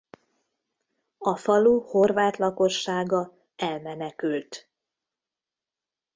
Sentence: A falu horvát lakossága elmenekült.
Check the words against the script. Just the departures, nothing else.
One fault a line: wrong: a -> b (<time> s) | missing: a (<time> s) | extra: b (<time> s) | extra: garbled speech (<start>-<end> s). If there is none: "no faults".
no faults